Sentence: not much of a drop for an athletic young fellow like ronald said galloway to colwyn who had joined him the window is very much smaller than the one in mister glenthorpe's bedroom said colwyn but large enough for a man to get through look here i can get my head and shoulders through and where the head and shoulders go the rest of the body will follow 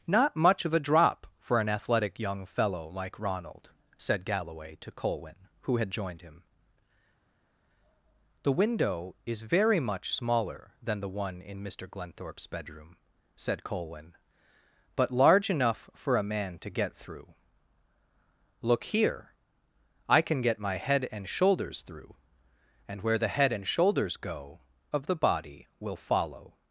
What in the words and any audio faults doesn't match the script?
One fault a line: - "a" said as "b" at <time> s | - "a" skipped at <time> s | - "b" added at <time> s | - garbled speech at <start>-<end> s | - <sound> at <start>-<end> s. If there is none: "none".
- "the rest" skipped at 24.6 s